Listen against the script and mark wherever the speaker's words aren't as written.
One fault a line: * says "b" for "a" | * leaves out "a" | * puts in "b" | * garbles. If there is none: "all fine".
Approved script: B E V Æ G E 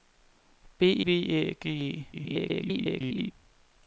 * leaves out "E"
* garbles